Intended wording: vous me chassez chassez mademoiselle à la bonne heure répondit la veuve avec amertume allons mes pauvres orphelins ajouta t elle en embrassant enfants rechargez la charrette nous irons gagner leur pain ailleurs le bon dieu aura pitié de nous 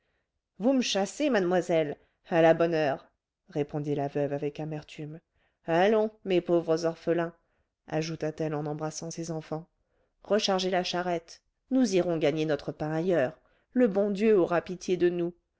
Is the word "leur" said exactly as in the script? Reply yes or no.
no